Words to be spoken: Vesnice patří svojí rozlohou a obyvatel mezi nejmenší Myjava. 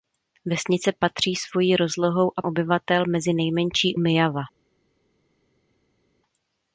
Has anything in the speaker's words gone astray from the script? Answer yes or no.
no